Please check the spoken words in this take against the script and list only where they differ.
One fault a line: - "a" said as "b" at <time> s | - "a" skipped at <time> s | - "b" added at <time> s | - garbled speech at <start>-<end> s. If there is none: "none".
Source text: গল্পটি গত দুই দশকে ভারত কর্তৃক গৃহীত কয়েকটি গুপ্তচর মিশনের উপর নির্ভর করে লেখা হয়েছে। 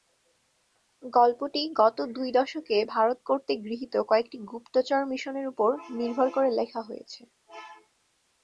none